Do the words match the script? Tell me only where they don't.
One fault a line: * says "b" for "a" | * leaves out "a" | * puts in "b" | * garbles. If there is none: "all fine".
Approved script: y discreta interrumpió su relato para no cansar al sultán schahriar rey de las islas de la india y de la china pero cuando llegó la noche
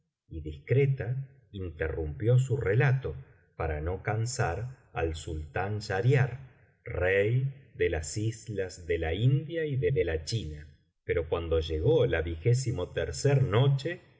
* puts in "de"